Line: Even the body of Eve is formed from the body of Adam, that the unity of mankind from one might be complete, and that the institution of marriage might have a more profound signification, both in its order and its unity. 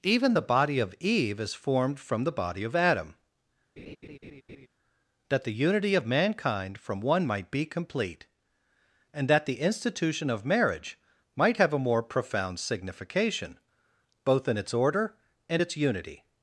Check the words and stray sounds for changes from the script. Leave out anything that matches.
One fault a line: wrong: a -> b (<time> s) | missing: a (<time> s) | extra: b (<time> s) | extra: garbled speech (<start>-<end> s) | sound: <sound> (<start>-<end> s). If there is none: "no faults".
sound: laugh (3.8-4.7 s)